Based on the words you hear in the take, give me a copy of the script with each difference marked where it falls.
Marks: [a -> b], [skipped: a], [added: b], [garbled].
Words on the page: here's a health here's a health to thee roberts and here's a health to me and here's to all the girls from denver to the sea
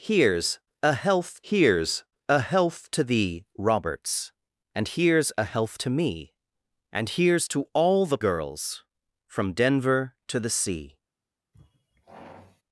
here's a health here's a health to thee roberts and here's a health to me and here's to all the girls from denver to the sea